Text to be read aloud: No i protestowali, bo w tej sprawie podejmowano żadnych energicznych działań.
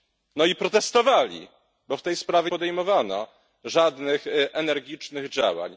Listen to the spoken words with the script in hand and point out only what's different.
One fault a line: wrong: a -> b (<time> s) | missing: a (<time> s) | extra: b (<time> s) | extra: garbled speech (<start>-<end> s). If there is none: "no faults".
no faults